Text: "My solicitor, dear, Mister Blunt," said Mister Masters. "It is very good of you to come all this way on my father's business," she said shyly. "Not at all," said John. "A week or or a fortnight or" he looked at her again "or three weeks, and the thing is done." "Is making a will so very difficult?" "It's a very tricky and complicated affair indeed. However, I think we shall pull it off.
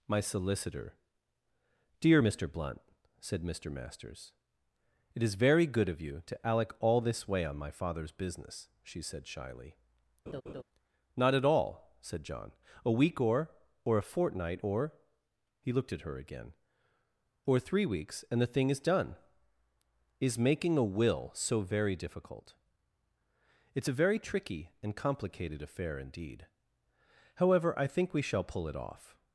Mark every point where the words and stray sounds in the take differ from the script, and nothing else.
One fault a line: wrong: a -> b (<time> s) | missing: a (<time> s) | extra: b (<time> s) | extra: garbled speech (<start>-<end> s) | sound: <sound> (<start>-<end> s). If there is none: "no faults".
wrong: come -> alec (6.5 s)
sound: laugh (10.3-10.6 s)